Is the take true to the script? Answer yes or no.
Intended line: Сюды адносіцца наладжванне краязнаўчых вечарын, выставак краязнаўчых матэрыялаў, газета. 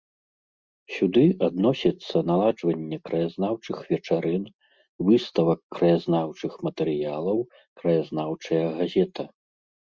no